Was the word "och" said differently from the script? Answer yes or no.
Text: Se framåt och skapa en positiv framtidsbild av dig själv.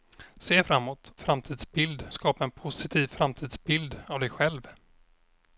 yes